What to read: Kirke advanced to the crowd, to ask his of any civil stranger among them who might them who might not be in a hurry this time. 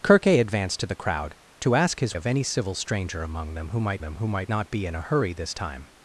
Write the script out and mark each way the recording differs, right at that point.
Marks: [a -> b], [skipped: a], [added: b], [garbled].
Kirke advanced to the crowd, to ask his of any civil stranger among them who might them who might not be in a hurry this time.